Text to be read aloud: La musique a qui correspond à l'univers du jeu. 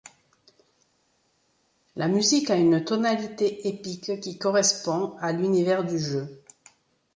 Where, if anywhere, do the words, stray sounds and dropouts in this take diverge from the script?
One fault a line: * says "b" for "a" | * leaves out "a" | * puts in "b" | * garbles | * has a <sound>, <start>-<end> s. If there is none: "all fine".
* puts in "une tonalité épique"